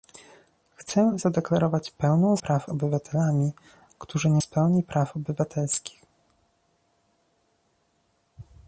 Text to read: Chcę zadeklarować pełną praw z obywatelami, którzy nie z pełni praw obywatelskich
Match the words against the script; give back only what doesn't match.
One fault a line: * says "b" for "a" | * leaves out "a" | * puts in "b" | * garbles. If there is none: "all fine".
all fine